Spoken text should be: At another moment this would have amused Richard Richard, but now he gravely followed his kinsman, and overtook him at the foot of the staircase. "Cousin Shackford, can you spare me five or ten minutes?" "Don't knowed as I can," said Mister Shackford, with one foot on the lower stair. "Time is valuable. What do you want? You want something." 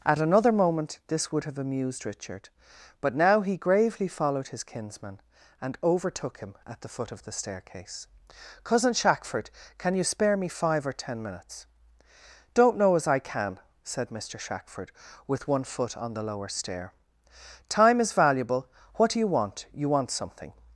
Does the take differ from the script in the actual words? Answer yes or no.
yes